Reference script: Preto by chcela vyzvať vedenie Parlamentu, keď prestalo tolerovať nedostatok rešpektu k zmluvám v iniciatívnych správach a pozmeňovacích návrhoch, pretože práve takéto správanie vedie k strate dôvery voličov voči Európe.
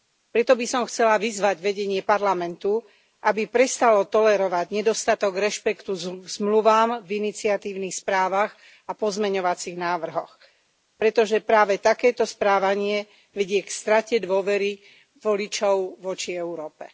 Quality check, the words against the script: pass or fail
fail